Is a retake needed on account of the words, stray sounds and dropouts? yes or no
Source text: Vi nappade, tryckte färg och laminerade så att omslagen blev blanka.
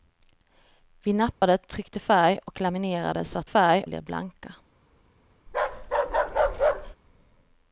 yes